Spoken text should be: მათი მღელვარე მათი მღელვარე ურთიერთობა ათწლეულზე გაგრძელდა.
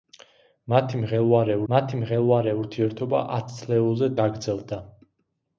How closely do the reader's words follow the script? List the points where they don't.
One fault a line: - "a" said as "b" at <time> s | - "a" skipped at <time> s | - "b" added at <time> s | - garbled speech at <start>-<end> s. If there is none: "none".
none